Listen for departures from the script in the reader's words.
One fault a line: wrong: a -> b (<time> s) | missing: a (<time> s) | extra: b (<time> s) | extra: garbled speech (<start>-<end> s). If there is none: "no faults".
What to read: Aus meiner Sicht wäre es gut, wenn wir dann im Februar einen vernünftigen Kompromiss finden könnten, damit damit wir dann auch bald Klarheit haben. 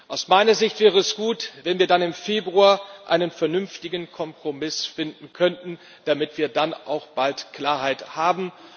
missing: damit (6.4 s)